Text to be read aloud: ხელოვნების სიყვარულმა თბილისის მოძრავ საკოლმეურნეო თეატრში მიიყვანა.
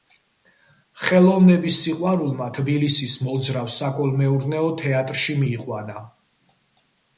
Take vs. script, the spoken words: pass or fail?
pass